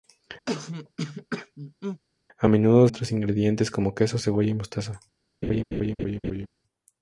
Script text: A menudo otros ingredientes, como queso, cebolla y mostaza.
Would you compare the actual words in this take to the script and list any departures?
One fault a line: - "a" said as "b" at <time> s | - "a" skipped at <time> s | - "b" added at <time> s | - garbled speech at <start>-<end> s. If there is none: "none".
none